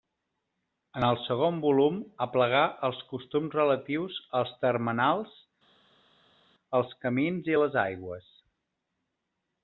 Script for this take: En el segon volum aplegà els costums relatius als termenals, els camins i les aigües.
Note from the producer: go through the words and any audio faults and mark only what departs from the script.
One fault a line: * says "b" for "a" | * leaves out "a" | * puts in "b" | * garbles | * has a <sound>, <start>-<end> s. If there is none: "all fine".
all fine